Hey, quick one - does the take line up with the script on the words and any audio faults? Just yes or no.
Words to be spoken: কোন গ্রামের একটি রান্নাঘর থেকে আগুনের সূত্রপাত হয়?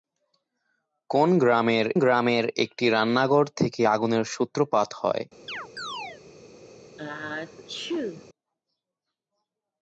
no